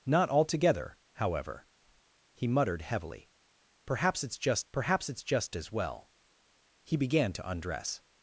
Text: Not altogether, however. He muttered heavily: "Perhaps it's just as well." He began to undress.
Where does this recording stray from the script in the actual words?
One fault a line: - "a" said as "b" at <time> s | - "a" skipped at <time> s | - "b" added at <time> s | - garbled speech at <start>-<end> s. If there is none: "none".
- "perhaps it's just" added at 4.7 s